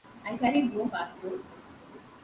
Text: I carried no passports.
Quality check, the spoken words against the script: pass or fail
pass